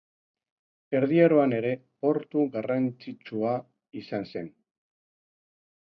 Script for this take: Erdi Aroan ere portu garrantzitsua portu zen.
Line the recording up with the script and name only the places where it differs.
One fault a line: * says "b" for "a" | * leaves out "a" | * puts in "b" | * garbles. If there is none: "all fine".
* says "izan" for "portu"